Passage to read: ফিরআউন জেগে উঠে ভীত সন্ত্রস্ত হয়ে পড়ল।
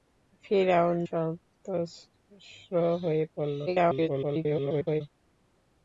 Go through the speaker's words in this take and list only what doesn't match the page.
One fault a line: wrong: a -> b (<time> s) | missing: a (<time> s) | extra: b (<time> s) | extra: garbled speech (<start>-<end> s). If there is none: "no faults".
missing: জেগে উঠে ভীত (1.0 s)
extra: garbled speech (3.7-5.0 s)